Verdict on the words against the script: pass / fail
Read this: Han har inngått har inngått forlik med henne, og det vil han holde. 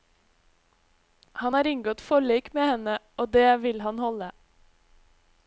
fail